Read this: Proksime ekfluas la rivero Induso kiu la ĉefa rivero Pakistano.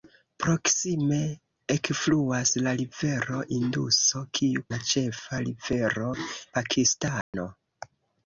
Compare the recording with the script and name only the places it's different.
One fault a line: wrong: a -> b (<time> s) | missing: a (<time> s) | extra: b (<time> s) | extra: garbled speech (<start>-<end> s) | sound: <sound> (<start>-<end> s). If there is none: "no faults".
sound: dropout (7.2-7.3 s)